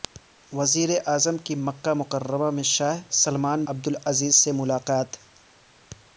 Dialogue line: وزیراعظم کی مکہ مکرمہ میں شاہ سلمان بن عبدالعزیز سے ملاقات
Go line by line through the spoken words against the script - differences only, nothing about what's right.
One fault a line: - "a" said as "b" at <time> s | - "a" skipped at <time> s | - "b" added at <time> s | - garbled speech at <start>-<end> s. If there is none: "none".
- "بن" skipped at 3.6 s